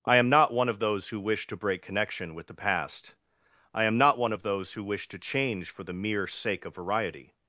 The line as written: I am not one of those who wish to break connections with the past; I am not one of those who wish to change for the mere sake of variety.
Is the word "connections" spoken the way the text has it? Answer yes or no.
no